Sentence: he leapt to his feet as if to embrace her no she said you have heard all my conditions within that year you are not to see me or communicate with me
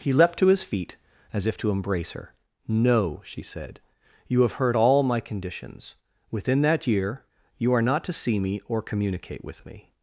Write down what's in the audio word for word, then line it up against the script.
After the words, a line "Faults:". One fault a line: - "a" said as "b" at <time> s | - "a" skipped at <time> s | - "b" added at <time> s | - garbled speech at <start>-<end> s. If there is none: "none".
he leapt to his feet as if to embrace her no she said you have heard all my conditions within that year you are not to see me or communicate with me
Faults:
none